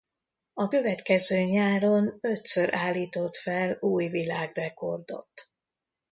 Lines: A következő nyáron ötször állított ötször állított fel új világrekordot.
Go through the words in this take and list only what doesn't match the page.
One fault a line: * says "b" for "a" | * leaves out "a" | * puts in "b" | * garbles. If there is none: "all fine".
* leaves out "ötször állított"